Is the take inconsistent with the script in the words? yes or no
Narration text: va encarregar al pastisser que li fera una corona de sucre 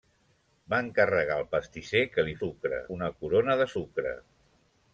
yes